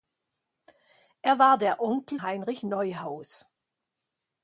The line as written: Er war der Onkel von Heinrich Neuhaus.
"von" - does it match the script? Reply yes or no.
no